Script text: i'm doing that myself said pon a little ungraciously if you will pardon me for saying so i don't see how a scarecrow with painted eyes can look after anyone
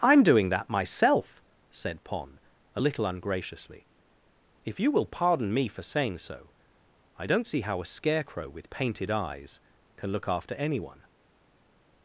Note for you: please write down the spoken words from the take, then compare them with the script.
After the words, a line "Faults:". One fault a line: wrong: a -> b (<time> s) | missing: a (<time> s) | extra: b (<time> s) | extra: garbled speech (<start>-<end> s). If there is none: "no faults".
i'm doing that myself said pon a little ungraciously if you will pardon me for saying so i don't see how a scarecrow with painted eyes can look after anyone
Faults:
no faults